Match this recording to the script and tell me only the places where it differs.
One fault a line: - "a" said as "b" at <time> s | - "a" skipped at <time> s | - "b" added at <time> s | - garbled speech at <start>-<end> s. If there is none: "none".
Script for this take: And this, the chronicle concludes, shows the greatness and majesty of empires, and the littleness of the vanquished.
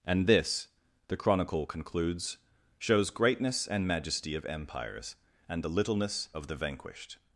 - "the" skipped at 3.1 s